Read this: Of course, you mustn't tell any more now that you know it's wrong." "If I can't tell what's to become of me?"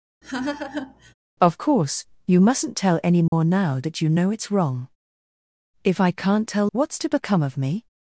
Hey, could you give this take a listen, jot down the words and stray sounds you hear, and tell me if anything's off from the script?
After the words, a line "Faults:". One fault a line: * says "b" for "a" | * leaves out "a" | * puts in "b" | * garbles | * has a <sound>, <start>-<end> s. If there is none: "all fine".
Of course, you mustn't tell any more now that you know it's wrong." "If I can't tell what's to become of me?"
Faults:
* has a laugh, 0.2-1.1 s
* has a dropout, 3.3-3.3 s